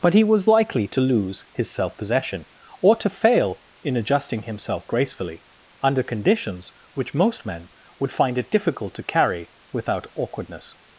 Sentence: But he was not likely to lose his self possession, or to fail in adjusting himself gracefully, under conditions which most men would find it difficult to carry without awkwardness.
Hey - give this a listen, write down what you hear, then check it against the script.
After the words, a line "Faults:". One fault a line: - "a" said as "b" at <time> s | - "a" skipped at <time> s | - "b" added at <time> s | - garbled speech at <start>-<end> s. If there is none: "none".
But he was likely to lose his self possession, or to fail in adjusting himself gracefully, under conditions which most men would find it difficult to carry without awkwardness.
Faults:
- "not" skipped at 0.5 s